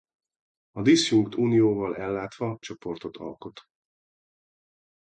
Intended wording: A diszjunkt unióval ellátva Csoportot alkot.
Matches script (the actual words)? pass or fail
pass